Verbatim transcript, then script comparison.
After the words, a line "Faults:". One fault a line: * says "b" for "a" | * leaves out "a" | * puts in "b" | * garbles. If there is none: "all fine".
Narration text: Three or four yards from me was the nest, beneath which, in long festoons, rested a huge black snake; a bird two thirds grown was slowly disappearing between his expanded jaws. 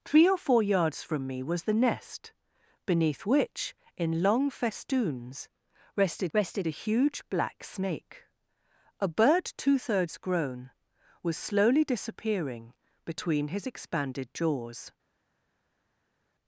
Three or four yards from me was the nest, beneath which, in long festoons, rested rested a huge black snake; a bird two thirds grown was slowly disappearing between his expanded jaws.
Faults:
* puts in "rested"